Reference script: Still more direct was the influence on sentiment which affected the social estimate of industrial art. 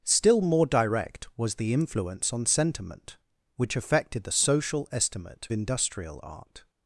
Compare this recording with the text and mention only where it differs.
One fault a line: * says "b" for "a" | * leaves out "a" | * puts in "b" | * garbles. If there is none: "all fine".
* leaves out "of"